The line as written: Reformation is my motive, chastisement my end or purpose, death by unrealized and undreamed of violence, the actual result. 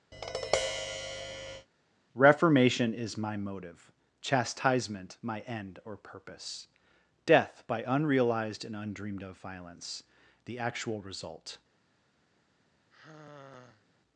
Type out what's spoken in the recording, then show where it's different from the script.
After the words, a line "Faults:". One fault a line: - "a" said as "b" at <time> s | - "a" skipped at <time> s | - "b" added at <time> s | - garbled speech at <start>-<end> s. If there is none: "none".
Reformation is my motive, chastisement my end or purpose, death by unrealized and undreamed of violence, the actual result.
Faults:
none